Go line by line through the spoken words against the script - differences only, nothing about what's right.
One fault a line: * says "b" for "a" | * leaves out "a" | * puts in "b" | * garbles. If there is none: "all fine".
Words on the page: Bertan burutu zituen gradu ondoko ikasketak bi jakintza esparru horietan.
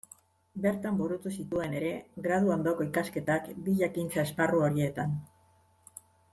* puts in "ere"